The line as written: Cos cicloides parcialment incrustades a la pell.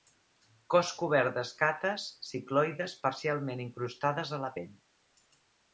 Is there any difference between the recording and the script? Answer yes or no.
yes